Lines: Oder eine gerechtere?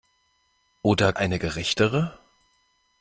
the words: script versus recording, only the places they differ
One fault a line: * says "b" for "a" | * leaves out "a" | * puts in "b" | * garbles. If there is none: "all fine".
all fine